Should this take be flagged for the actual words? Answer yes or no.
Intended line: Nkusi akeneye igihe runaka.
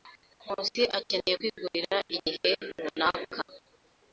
yes